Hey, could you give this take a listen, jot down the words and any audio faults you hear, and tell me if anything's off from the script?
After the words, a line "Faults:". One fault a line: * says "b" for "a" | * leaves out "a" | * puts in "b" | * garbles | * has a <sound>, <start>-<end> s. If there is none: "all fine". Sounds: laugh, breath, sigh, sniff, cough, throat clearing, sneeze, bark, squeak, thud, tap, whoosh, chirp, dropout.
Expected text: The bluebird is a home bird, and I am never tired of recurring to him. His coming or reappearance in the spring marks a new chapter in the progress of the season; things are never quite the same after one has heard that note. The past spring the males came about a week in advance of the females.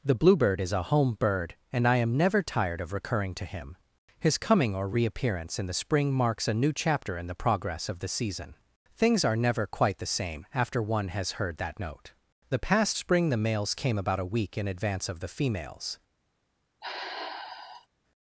The bluebird is a home bird, and I am never tired of recurring to him. His coming or reappearance in the spring marks a new chapter in the progress of the season; things are never quite the same after one has heard that note. The past spring the males came about a week in advance of the females.
Faults:
* has a sigh, 16.8-17.9 s